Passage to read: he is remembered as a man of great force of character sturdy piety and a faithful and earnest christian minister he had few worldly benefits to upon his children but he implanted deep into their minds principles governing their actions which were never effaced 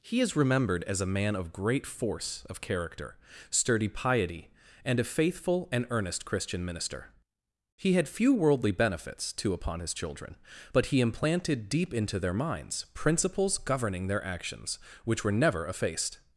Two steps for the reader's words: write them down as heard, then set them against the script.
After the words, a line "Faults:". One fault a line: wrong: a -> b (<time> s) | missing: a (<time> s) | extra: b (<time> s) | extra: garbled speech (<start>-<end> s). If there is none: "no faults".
he is remembered as a man of great force of character sturdy piety and a faithful and earnest christian minister he had few worldly benefits to upon his children but he implanted deep into their minds principles governing their actions which were never effaced
Faults:
no faults